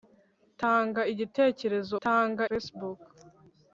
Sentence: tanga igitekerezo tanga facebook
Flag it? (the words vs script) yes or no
no